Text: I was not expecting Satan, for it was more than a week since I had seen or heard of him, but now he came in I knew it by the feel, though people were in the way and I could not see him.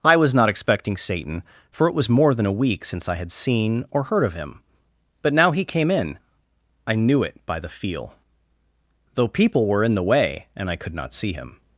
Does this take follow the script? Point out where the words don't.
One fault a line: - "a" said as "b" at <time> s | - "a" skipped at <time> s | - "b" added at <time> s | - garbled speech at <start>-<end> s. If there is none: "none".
none